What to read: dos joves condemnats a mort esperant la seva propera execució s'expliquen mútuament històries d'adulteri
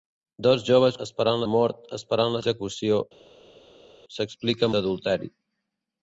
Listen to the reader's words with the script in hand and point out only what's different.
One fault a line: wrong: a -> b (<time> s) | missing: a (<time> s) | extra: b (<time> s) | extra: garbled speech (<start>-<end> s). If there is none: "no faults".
wrong: condemnats -> esperant (1.1 s)
missing: seva propera (2.4 s)
missing: mútuament històries (4.7 s)